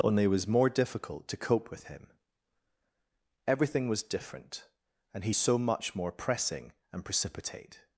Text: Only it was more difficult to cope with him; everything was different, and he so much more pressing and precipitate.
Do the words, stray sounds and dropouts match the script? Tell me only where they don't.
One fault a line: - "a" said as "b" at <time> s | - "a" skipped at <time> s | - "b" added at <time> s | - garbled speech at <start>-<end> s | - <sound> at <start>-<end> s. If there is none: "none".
none